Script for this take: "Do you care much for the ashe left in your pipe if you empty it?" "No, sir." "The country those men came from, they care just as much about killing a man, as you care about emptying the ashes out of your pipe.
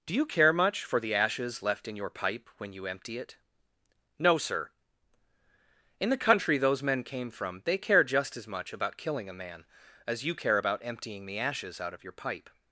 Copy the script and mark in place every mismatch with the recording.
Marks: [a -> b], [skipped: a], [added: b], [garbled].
"Do you care much for the [ashe -> ashes] left in your pipe [if -> when] you empty it?" "No, sir." [added: In] "The country those men came from, they care just as much about killing a man, as you care about emptying the ashes out of your pipe.